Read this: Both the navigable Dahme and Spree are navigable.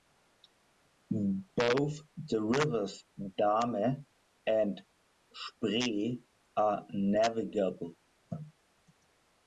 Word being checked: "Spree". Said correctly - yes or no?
yes